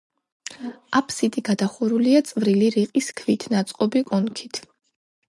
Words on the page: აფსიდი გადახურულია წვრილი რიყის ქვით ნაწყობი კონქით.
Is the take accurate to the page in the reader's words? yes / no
yes